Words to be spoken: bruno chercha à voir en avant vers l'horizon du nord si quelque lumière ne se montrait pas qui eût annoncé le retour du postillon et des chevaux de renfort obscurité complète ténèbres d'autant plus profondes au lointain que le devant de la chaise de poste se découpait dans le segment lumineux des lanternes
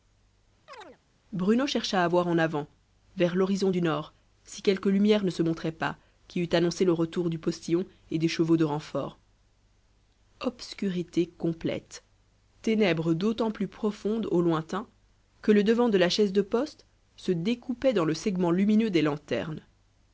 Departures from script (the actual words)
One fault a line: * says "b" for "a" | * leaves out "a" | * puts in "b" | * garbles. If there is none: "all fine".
all fine